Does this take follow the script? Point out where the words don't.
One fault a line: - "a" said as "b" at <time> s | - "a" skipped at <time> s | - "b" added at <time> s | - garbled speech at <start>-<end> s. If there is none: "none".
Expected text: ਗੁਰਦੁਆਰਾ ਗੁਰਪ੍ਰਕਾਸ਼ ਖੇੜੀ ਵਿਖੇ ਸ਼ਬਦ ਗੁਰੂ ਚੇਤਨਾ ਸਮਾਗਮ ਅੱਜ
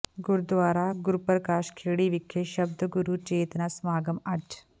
none